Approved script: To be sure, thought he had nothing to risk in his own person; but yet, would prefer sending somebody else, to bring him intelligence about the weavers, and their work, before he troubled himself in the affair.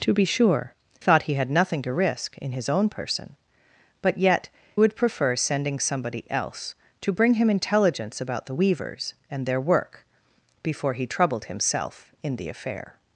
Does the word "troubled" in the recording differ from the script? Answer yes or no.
no